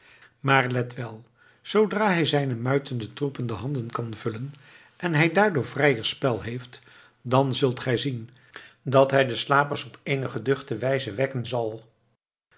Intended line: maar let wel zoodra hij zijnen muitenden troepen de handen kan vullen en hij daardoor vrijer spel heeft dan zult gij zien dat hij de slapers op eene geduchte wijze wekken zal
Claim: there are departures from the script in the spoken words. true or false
false